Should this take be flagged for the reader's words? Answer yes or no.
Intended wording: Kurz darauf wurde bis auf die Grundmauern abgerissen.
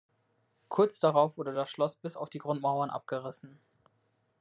yes